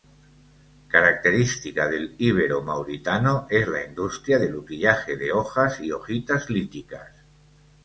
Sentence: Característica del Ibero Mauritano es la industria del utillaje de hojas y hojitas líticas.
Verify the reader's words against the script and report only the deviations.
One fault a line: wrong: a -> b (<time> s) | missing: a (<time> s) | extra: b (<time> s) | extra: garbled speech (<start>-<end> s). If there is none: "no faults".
no faults